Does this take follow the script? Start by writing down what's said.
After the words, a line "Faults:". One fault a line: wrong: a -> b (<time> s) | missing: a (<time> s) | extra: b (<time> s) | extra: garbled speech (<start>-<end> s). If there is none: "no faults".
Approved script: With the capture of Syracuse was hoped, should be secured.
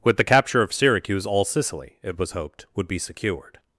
With the capture of Syracuse all Sicily, it was hoped, would be secured.
Faults:
extra: all Sicily it (1.3 s)
wrong: should -> would (2.7 s)